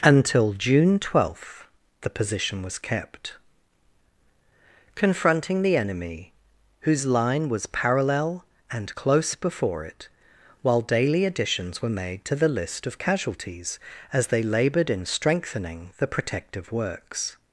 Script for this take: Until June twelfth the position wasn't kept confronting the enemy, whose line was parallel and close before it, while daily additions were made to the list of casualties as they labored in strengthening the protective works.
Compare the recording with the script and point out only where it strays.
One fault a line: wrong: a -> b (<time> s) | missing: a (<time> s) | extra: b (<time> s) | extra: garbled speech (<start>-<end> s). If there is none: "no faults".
wrong: wasn't -> was (2.6 s)